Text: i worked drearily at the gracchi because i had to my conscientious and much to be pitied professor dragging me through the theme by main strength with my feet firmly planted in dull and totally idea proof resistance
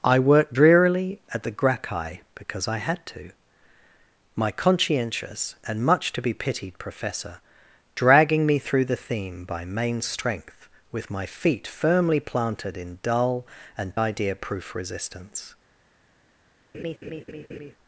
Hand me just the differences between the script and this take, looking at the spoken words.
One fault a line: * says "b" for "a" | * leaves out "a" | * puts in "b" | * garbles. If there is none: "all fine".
* leaves out "totally"